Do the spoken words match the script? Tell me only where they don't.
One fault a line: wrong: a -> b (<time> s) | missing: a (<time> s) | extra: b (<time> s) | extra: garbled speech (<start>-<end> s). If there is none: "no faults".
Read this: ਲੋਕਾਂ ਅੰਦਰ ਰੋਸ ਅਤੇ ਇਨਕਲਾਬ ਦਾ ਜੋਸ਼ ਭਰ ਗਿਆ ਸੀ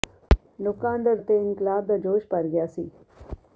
missing: ਰੋਸ (1.2 s)